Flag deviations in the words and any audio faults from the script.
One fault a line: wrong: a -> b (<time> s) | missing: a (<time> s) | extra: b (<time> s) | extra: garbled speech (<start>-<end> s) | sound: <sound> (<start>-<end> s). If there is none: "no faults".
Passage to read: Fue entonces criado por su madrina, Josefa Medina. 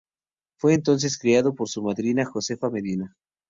no faults